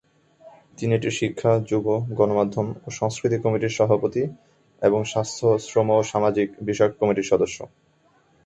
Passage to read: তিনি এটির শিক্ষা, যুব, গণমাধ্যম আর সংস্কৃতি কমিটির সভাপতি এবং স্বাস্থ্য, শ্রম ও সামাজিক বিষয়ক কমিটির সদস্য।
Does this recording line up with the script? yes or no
no